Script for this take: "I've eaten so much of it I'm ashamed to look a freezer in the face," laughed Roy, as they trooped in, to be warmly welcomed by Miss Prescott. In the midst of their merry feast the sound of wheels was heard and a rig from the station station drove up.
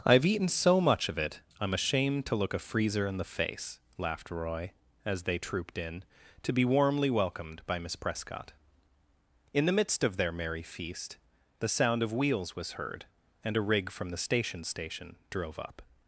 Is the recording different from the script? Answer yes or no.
no